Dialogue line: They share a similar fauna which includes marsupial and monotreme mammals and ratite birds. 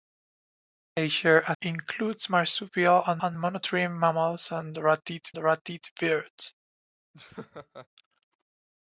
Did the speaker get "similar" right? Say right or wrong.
wrong